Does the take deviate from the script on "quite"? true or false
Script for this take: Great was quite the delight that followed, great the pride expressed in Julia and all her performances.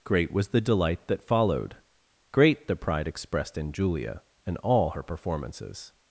true